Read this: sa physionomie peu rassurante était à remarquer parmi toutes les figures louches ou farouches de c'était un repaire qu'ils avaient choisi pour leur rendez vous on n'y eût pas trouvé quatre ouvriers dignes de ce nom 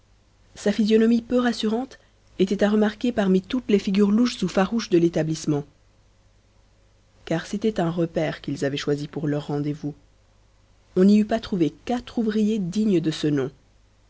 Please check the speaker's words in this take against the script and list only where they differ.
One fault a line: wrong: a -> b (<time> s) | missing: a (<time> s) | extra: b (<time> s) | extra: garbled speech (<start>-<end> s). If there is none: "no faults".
extra: l'établissement car (5.0 s)